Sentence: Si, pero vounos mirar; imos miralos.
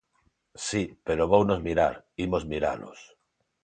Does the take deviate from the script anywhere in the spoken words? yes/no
no